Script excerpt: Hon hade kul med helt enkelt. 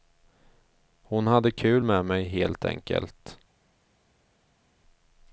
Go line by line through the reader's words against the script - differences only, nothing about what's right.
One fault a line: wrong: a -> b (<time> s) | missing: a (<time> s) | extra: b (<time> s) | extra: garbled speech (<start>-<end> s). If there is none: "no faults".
extra: mig (2.0 s)